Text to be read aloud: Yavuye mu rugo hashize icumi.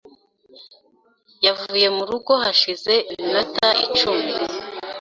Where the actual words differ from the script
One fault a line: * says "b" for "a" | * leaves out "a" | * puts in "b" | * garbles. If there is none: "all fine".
* puts in "iminota"